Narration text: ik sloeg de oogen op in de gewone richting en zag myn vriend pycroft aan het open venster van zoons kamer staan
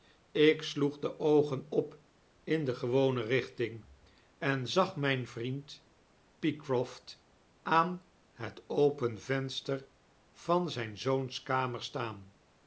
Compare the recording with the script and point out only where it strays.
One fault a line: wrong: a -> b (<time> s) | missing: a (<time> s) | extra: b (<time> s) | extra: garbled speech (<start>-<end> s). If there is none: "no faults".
extra: zyn (10.7 s)